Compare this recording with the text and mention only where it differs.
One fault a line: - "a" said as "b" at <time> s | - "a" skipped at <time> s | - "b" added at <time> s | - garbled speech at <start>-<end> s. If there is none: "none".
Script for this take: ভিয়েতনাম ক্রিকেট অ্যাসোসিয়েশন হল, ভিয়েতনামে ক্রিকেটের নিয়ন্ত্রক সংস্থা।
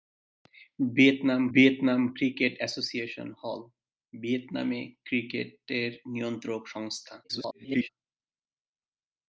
- "ভিয়েতনাম" added at 1.5 s
- garbled speech at 7.2-7.9 s